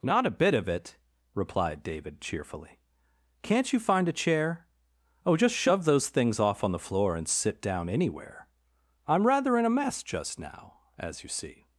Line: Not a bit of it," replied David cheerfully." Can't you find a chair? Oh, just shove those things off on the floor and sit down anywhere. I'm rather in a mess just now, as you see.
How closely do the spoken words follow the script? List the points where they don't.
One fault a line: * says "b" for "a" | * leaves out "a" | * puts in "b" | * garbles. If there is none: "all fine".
all fine